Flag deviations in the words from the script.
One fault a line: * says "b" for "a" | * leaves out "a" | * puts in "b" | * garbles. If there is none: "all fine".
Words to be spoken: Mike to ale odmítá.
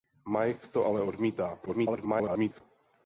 * garbles